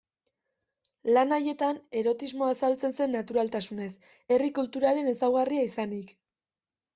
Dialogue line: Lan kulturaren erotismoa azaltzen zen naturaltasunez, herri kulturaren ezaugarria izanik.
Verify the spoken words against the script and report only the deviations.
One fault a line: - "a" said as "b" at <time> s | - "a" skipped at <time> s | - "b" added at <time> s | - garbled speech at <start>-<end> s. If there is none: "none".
- "kulturaren" said as "haietan" at 1.4 s